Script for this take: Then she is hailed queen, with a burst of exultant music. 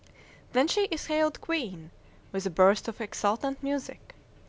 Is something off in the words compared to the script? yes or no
no